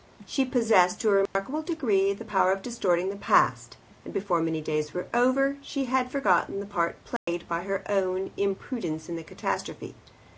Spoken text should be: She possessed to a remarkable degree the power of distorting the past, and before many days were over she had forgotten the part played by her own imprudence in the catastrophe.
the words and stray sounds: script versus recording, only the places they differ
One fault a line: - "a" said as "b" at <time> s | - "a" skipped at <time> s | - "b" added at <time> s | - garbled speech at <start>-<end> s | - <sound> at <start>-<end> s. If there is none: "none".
- dropout at 1.3-1.4 s
- dropout at 7.2-7.3 s